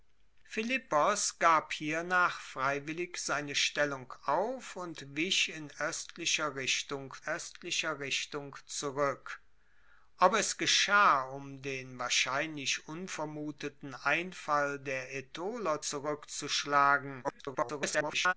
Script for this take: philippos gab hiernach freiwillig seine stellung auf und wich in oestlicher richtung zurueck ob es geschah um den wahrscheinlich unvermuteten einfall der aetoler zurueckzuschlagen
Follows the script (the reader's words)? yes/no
no